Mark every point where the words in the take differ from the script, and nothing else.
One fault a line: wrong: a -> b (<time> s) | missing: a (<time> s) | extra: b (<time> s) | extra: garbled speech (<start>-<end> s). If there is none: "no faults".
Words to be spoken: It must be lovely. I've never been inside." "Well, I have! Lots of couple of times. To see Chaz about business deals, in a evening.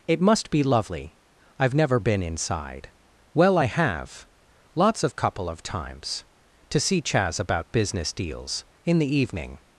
wrong: a -> the (9.0 s)